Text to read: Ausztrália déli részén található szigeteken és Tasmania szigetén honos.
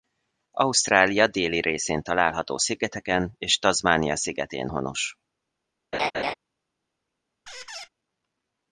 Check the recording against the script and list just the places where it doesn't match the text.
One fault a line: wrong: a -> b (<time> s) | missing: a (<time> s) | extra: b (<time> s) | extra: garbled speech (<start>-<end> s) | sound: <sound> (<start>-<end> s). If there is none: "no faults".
sound: laugh (5.9-6.3 s)
sound: squeak (7.5-7.9 s)